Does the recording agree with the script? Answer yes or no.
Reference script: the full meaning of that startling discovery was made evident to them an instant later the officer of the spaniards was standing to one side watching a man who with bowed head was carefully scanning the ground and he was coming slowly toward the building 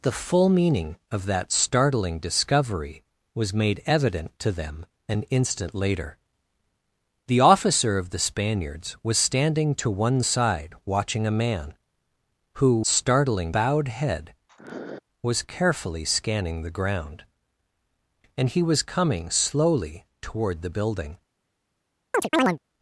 no